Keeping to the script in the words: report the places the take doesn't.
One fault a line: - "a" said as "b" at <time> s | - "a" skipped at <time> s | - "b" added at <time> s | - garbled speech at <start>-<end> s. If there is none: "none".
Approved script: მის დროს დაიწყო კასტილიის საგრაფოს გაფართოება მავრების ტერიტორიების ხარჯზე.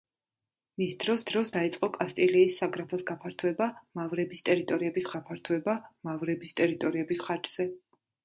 - "დროს" added at 1.3 s
- "გაფართოება მავრების ტერიტორიების" added at 5.2 s